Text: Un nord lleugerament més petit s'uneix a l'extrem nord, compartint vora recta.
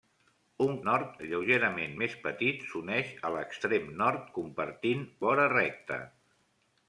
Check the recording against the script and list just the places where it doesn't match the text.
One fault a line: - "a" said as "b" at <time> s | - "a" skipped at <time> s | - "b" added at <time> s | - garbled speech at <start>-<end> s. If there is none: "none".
none